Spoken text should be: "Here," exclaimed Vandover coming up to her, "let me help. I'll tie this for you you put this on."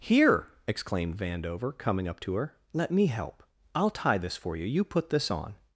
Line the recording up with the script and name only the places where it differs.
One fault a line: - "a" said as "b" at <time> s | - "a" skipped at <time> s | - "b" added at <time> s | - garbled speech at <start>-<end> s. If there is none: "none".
none